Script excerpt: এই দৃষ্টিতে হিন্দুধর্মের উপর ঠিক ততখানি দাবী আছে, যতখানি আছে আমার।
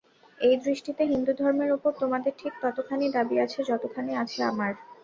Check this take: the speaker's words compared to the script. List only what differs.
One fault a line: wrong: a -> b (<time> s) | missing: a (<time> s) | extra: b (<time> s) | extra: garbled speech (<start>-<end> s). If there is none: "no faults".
extra: তোমাদের (2.0 s)